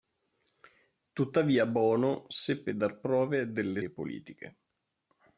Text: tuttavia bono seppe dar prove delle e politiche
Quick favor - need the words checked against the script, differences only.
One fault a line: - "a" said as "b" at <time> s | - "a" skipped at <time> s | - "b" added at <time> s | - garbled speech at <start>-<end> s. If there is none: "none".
none